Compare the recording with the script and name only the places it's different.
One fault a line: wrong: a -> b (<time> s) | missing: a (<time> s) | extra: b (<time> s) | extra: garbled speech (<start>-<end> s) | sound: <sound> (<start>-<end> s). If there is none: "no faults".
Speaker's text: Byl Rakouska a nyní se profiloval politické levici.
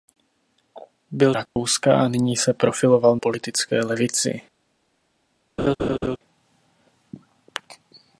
sound: dropout (1.5-1.6 s)
sound: laugh (5.6-6.2 s)